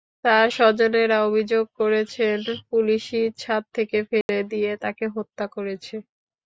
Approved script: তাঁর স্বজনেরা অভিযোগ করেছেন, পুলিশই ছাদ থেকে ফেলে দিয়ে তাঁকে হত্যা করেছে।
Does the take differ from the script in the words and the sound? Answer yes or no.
yes